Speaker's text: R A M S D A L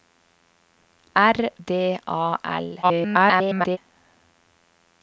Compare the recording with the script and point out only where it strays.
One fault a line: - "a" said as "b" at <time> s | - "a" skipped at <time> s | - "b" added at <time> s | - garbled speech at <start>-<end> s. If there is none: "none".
- "A M S" skipped at 1.5 s
- garbled speech at 2.8-3.8 s